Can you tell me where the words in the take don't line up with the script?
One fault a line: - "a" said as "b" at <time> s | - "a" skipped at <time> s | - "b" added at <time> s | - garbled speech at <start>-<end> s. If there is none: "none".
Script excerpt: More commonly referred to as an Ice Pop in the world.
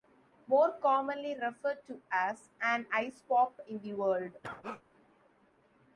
none